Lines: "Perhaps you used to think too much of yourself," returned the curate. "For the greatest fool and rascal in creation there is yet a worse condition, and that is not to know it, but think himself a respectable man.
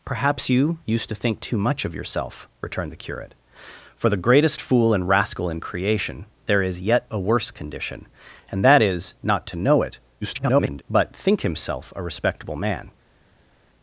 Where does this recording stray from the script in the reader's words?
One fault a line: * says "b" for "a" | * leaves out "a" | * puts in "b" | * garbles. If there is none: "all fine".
* garbles